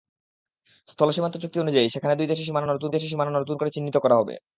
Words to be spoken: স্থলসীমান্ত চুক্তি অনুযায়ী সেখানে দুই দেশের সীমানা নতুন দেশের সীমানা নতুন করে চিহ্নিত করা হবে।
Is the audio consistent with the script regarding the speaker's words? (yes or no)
yes